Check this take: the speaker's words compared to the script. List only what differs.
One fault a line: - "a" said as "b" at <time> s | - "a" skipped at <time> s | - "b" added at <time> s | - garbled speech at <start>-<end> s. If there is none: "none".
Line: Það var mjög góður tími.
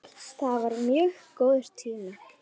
none